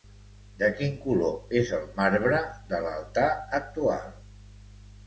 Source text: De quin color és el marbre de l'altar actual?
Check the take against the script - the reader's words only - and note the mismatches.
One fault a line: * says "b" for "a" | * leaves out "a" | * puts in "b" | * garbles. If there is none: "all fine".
all fine